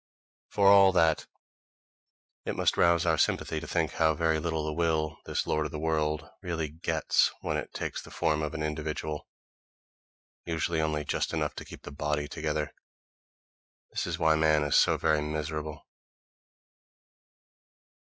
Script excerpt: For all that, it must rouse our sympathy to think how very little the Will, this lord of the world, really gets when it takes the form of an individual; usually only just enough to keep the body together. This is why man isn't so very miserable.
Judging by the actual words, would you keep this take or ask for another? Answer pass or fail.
fail